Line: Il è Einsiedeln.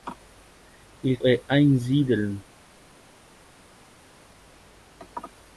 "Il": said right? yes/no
yes